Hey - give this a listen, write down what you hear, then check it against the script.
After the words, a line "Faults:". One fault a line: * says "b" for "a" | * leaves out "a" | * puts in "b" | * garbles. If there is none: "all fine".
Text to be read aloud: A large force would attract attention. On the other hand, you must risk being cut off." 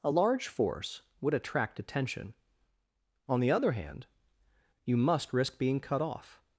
A large force would attract attention. On the other hand, you must risk being cut off."
Faults:
all fine